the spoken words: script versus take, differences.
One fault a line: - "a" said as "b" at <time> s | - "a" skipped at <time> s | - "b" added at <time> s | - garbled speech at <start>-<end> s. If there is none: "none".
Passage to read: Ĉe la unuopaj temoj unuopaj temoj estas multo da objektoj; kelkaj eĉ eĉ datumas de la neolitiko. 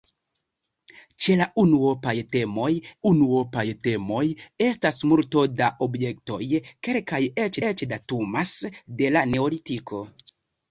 none